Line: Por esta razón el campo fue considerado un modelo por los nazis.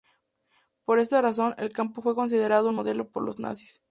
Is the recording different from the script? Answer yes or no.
no